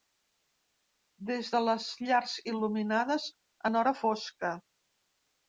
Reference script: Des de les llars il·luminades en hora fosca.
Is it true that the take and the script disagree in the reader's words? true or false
false